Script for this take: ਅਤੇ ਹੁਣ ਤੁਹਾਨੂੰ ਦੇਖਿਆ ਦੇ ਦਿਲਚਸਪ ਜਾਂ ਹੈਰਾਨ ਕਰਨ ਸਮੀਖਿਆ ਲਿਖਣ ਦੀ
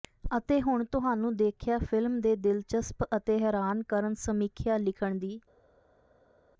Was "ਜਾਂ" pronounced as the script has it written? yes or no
no